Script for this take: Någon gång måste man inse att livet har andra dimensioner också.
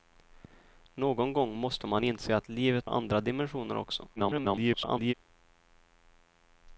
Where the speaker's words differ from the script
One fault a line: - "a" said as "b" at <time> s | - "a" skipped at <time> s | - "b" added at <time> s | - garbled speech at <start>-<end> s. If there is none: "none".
- "har" skipped at 2.9 s
- garbled speech at 4.2-5.1 s